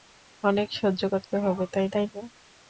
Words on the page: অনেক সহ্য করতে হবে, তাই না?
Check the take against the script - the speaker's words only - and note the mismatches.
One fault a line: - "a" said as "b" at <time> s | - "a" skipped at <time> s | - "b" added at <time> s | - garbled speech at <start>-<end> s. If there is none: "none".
- "তাই" added at 1.9 s